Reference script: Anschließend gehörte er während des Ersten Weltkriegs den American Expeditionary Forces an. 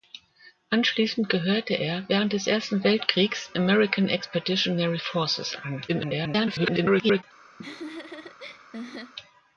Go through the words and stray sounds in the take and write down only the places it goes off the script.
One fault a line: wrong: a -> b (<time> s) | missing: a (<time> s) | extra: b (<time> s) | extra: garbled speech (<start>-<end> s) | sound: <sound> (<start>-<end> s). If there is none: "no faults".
missing: den (3.5 s)
extra: garbled speech (5.9-7.2 s)
sound: laugh (7.6-9.1 s)